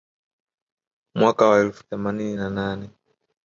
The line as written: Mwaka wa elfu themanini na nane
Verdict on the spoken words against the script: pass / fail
pass